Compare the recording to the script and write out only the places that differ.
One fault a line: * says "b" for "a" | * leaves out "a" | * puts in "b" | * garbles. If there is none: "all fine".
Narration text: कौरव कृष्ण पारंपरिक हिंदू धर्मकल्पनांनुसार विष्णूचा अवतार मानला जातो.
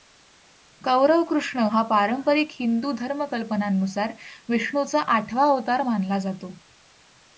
* puts in "हा"
* puts in "आठवा"